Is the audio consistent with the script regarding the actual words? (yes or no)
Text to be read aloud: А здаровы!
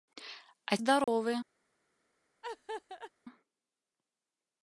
yes